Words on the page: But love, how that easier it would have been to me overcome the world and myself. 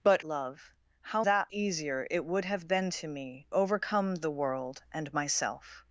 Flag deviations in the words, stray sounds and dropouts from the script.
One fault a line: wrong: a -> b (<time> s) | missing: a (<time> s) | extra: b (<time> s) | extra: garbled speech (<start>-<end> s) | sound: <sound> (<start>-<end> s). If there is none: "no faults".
no faults